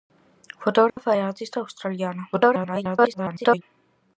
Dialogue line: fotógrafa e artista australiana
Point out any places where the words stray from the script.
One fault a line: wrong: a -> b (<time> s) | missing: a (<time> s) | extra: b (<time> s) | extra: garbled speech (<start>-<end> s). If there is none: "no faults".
extra: garbled speech (2.3-3.6 s)